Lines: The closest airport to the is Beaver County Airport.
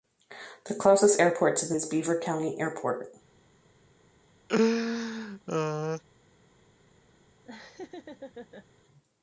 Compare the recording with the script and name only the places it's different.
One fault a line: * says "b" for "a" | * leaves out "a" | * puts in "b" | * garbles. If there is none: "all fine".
all fine